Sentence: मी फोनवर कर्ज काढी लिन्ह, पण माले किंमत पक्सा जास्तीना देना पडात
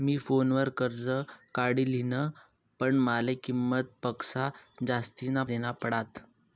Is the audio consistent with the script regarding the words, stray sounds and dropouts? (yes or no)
yes